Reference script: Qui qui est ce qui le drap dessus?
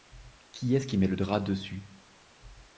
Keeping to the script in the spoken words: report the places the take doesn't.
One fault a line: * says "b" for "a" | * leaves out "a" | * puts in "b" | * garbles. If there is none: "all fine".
* leaves out "qui"
* puts in "met"